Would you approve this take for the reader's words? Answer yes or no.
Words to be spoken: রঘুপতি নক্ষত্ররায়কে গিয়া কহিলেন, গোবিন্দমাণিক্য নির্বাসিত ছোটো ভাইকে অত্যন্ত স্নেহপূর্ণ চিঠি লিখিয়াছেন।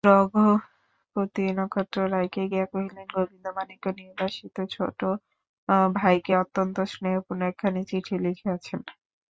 no